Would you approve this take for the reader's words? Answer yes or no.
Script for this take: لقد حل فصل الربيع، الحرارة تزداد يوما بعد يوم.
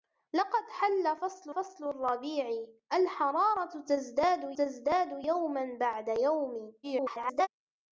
no